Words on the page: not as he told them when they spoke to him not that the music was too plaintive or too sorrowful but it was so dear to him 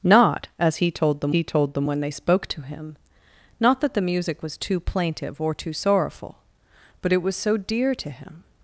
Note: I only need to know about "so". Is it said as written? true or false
true